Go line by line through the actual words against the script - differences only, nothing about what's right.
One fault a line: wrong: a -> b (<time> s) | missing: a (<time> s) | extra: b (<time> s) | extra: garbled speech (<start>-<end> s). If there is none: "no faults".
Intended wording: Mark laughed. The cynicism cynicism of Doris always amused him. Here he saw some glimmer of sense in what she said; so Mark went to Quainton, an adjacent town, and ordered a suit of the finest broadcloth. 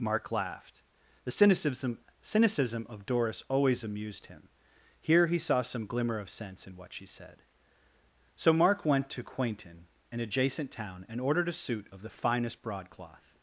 no faults